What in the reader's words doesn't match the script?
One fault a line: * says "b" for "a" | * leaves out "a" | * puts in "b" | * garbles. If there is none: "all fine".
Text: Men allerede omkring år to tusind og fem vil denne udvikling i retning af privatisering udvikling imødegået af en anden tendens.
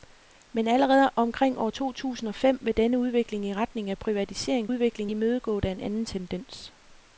all fine